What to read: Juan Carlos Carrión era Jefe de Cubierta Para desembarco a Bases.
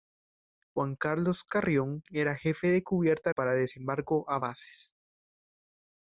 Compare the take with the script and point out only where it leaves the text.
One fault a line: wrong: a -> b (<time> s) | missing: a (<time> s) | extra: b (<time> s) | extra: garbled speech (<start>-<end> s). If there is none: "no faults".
no faults